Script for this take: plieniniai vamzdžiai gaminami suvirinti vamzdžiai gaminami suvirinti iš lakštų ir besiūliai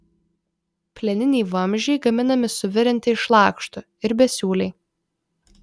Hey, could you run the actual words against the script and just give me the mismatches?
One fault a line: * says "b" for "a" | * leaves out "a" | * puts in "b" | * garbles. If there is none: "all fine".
* leaves out "vamzdžiai gaminami suvirinti"